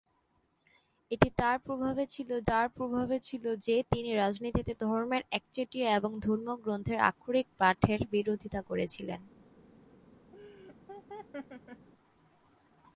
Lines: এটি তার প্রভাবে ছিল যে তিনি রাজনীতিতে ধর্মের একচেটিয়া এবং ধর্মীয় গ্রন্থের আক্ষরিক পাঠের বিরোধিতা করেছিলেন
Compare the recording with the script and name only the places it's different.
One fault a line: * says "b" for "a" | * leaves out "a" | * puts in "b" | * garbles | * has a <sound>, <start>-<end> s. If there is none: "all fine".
* puts in "তার প্রভাবে ছিল"
* has a laugh, 10.3-11.9 s